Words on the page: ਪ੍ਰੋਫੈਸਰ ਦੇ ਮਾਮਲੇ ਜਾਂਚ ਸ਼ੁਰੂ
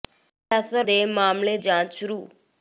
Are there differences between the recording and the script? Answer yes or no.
no